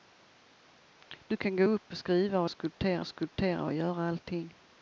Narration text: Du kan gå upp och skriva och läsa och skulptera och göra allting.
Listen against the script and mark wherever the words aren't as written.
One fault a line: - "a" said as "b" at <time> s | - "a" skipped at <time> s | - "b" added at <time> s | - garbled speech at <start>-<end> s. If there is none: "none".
- "läsa" said as "skulptera" at 2.5 s